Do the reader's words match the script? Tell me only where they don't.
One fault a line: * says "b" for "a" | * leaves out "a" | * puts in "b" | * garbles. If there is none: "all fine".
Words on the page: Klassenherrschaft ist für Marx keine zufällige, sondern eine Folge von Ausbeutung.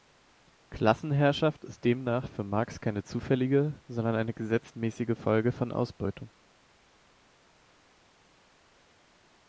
* puts in "demnach"
* puts in "gesetzmäßige"